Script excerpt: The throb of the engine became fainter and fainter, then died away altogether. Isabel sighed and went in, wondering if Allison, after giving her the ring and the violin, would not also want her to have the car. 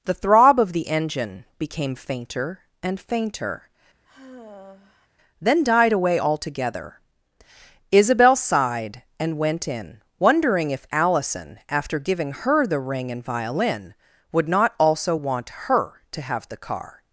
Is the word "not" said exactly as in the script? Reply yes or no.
yes